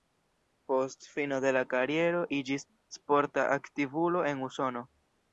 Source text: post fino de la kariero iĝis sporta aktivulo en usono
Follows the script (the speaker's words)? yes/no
yes